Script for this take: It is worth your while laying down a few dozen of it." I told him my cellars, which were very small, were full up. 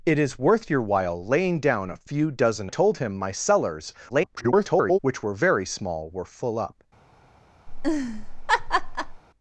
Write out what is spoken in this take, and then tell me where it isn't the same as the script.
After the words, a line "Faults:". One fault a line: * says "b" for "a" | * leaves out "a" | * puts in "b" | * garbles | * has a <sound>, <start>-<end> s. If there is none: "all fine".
It is worth your while laying down a few dozen told him my cellars, [garbled] which were very small, were full up.
Faults:
* leaves out "of it I"
* garbles
* has a laugh, 7.7-9.2 s